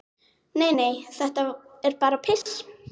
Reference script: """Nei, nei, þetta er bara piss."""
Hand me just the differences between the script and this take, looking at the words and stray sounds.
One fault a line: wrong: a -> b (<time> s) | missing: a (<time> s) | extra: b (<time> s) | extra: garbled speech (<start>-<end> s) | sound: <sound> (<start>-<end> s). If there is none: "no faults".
sound: dropout (2.4-2.5 s)